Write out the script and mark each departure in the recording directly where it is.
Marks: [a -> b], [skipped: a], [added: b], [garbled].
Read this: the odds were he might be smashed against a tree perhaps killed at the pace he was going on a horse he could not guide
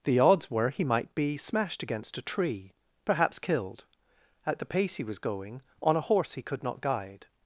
the odds were he might be smashed against a tree perhaps killed at the pace he was going on a horse he could not guide